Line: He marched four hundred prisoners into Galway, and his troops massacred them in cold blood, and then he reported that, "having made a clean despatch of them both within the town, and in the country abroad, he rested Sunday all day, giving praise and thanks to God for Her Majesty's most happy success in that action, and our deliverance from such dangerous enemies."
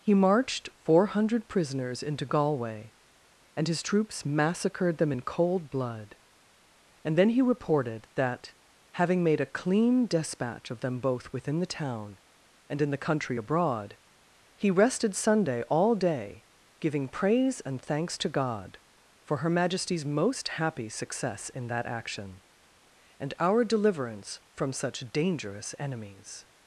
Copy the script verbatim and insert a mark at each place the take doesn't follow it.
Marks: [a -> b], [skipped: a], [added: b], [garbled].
He marched four hundred prisoners into Galway, and his troops massacred them in cold blood, and then he reported that, "having made a clean despatch of them both within the town, and in the country abroad, he rested Sunday all day, giving praise and thanks to God for Her Majesty's most happy success in that action, and our deliverance from such dangerous enemies."